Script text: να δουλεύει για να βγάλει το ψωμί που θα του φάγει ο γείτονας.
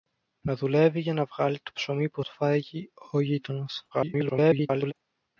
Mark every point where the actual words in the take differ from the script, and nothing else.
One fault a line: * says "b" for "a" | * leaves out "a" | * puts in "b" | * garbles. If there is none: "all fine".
* leaves out "θα"
* garbles